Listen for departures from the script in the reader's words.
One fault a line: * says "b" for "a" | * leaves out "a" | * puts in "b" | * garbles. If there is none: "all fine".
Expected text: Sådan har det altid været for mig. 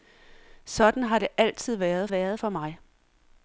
* puts in "været"